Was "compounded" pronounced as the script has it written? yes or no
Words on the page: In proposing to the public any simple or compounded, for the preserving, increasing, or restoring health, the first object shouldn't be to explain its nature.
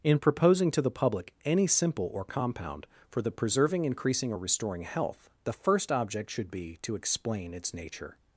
no